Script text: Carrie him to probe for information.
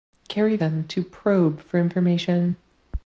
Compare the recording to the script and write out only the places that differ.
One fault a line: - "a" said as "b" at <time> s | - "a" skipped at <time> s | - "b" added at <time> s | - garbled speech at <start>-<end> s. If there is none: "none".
none